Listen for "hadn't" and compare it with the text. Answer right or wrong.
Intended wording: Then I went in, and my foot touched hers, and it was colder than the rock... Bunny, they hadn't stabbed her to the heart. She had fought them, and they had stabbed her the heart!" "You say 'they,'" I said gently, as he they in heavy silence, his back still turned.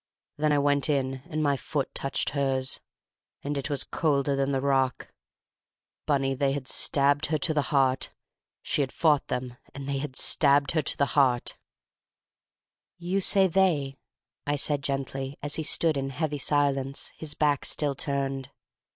wrong